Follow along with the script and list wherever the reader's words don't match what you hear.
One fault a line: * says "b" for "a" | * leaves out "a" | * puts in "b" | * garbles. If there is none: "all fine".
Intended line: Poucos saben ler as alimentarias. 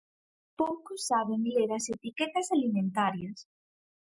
* puts in "etiquetas"